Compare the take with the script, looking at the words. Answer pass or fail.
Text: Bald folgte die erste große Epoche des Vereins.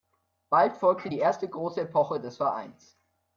pass